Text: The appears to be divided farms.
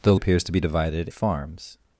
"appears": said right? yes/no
yes